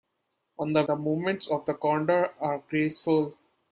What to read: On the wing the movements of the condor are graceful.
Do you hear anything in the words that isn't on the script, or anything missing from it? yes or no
yes